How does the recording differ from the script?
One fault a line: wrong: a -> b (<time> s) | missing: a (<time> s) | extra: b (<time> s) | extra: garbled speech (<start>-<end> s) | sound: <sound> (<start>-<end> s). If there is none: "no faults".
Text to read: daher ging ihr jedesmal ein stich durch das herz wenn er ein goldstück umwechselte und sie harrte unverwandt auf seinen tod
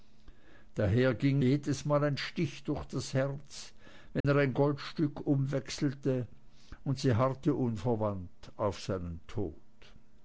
missing: ihr (1.4 s)
sound: dropout (4.2-4.2 s)